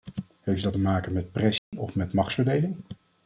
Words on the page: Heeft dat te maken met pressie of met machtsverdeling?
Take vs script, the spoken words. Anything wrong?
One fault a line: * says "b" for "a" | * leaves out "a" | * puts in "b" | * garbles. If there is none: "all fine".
all fine